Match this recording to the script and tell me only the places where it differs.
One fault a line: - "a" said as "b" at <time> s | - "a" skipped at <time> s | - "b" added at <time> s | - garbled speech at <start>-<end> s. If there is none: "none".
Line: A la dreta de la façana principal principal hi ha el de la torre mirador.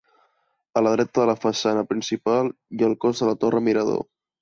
- "principal" skipped at 2.5 s
- "cos" added at 3.1 s